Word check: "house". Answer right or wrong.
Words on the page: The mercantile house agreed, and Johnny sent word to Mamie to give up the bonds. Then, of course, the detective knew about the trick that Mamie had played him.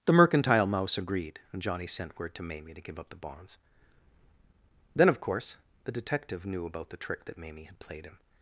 wrong